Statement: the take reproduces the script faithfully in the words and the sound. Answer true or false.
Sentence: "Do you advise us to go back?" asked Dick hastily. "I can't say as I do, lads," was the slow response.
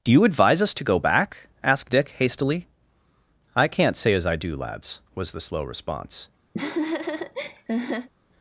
false